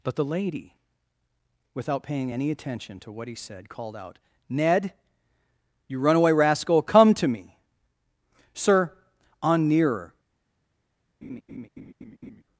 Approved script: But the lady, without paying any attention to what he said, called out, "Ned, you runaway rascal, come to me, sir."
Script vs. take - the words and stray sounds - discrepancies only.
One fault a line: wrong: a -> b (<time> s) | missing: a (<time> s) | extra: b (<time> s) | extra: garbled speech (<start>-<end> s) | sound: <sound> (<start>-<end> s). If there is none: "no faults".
extra: On nearer (9.4 s)
sound: laugh (11.2-12.4 s)